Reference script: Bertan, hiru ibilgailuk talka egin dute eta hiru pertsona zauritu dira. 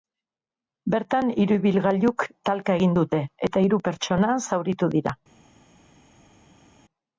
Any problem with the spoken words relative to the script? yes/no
no